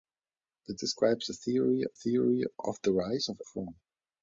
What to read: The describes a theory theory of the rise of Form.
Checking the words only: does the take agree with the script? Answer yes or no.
yes